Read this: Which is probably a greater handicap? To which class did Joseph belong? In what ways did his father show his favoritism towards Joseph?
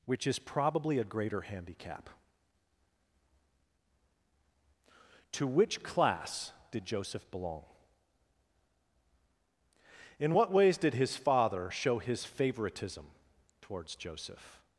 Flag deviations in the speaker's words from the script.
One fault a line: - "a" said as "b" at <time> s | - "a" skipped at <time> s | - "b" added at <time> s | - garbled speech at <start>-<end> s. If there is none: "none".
none